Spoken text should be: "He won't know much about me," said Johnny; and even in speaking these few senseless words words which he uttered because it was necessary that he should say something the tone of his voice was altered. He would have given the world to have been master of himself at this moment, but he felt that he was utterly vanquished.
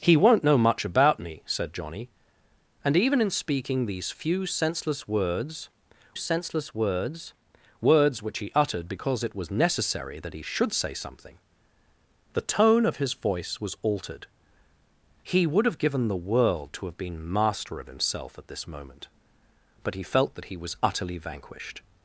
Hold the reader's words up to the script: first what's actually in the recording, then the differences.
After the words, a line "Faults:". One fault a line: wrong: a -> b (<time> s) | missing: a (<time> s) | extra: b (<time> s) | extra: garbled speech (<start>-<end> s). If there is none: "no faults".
"He won't know much about me," said Johnny; and even in speaking these few senseless words senseless words words which he uttered because it was necessary that he should say something the tone of his voice was altered. He would have given the world to have been master of himself at this moment, but he felt that he was utterly vanquished.
Faults:
extra: senseless words (6.2 s)